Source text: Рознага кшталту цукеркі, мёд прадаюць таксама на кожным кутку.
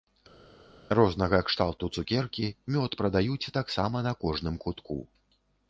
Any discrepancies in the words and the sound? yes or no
no